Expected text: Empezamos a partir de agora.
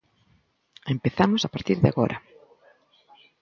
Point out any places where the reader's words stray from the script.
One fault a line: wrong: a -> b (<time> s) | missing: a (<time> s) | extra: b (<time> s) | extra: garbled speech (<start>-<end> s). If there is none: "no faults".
no faults